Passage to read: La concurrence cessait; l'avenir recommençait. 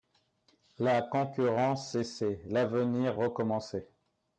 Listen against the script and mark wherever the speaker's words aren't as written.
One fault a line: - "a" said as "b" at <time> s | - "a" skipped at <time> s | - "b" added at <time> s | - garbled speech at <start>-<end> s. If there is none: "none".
none